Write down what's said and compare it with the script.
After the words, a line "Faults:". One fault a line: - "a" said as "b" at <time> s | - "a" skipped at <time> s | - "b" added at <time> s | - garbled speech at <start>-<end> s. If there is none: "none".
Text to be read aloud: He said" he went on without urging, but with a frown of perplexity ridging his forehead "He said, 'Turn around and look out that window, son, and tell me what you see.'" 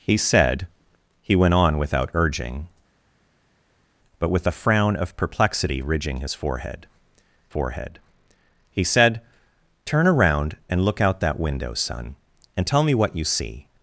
He said" he went on without urging, but with a frown of perplexity ridging his forehead forehead "He said, 'Turn around and look out that window, son, and tell me what you see.'"
Faults:
- "forehead" added at 7.5 s